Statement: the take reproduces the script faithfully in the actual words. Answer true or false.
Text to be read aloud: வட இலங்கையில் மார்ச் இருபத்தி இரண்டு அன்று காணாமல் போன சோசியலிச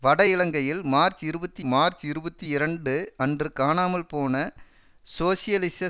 false